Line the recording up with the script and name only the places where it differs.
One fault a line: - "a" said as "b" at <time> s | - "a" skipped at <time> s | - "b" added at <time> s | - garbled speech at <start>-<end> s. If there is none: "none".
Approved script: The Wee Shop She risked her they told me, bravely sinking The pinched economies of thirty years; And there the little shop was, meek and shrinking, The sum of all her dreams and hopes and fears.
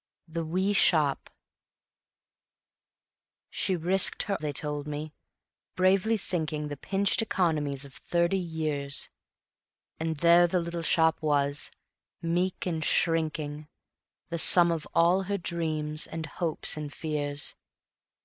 none